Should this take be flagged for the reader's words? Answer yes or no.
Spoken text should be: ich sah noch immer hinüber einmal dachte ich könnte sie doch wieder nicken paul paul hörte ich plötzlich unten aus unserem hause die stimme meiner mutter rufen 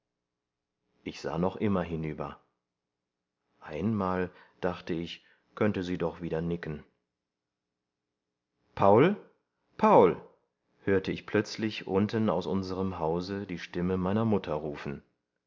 no